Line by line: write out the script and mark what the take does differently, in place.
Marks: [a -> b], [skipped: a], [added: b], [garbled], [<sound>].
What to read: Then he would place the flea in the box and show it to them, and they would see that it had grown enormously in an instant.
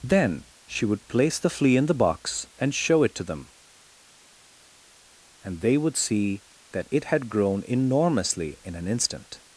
Then [he -> she] would place the flea in the box and show it to them, and they would see that it had grown enormously in an instant.